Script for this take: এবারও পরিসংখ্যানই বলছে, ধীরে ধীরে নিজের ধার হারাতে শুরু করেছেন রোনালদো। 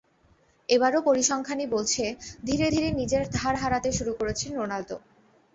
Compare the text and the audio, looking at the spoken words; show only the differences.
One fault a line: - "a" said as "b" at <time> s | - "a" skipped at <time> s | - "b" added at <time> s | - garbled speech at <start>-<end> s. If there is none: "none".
none